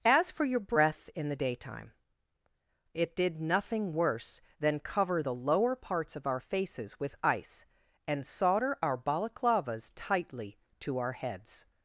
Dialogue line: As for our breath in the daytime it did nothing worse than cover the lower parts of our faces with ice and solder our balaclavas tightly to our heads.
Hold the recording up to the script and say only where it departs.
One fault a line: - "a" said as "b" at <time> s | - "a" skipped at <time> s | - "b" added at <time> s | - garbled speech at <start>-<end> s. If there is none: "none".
- "our" said as "your" at 0.5 s